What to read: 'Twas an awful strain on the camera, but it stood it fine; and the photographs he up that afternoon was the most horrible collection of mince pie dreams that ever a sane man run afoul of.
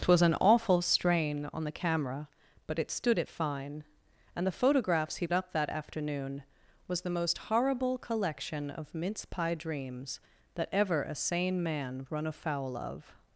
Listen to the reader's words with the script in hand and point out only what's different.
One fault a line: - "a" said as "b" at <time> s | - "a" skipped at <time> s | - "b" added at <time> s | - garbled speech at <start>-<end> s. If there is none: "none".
none